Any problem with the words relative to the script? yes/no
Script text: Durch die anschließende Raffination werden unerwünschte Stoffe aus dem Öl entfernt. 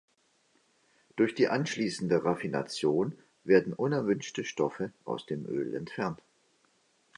no